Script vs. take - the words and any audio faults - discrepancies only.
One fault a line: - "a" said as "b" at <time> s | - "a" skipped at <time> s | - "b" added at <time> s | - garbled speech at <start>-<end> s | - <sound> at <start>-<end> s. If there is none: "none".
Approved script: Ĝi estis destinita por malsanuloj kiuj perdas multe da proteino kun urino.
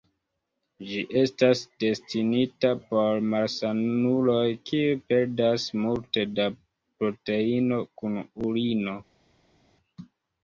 - "estis" said as "estas" at 1.2 s